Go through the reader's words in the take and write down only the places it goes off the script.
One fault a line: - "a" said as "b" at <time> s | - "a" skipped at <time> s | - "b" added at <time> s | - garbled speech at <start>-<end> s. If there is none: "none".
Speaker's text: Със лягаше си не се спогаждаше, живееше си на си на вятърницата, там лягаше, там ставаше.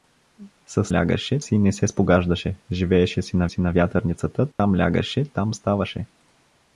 none